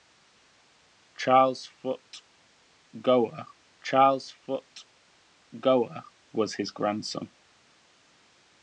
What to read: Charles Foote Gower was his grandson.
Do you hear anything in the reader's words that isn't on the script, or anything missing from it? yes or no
yes